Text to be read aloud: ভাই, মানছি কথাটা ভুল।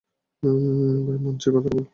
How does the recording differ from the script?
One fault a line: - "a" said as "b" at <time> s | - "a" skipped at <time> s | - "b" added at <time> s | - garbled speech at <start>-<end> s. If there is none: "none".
none